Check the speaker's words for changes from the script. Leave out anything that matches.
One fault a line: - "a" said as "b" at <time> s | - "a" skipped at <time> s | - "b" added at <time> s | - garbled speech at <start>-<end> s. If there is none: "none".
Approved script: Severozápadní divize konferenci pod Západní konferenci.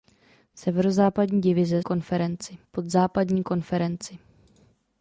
none